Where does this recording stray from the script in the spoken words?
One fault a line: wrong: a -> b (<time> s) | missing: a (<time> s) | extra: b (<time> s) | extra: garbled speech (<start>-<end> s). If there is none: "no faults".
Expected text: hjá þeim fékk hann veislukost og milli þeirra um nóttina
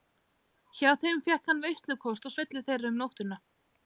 no faults